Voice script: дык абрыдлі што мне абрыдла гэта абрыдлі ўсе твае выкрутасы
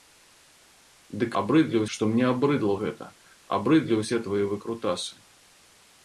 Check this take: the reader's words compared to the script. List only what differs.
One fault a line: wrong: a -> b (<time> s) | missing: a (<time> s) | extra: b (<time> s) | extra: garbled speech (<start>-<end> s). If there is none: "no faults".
no faults